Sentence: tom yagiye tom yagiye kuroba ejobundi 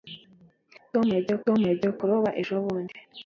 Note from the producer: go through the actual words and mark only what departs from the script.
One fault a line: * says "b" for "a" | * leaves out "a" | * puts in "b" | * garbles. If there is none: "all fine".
all fine